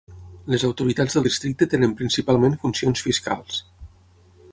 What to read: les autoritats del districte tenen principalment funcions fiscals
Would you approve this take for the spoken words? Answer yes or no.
yes